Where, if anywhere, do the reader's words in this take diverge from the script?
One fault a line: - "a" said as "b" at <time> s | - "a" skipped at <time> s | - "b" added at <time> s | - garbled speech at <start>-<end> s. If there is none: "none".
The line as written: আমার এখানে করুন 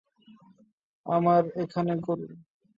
none